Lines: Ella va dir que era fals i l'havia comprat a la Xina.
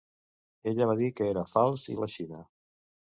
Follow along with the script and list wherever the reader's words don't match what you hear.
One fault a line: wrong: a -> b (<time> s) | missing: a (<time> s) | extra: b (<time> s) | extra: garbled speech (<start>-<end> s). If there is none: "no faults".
missing: l'havia comprat (2.0 s)